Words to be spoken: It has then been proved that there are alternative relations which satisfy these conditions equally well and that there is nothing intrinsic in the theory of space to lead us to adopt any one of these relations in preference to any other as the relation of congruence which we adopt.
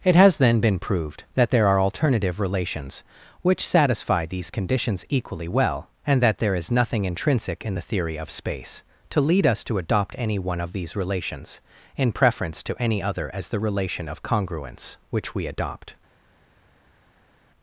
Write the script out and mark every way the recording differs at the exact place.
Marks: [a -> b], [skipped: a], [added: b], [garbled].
It has then been proved that there are alternative relations which satisfy these conditions equally well and that there is nothing intrinsic in the theory of space to lead us to adopt any one of these relations in preference to any other as the relation of congruence which we adopt.